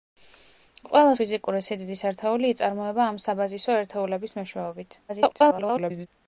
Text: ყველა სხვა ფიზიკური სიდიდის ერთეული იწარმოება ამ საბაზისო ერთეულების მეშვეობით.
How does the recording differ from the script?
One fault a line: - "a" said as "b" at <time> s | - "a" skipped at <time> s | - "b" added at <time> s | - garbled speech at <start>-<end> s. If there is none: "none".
- "სხვა" skipped at 1.1 s
- garbled speech at 5.1-6.1 s